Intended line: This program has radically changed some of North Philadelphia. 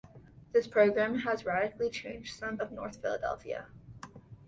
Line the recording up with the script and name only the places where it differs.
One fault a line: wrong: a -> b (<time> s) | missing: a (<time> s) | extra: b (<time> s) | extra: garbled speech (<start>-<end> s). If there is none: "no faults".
no faults